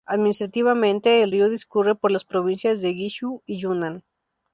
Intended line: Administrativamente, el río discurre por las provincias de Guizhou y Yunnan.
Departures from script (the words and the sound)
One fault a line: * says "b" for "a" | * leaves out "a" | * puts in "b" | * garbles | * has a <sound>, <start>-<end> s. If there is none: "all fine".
all fine